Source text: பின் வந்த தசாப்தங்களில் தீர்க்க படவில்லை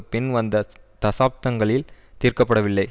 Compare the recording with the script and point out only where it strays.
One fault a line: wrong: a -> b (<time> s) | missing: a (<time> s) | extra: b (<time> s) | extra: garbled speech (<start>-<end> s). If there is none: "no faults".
no faults